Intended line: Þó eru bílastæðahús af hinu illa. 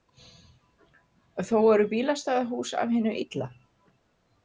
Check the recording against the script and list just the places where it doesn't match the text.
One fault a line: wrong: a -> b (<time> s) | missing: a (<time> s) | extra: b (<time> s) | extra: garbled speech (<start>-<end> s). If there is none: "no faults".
no faults